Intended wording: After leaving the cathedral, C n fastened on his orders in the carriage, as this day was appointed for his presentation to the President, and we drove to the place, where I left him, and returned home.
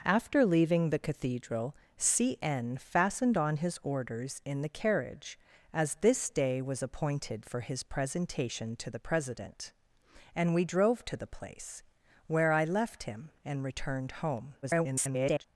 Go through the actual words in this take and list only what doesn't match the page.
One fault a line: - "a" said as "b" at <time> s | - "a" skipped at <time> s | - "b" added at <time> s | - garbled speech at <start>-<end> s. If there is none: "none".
- garbled speech at 14.6-15.4 s